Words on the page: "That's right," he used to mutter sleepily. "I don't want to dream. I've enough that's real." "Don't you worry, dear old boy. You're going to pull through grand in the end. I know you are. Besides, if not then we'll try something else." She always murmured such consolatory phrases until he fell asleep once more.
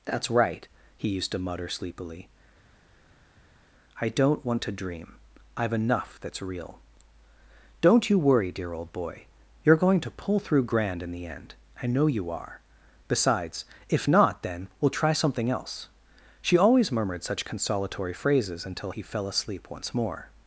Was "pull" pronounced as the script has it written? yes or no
yes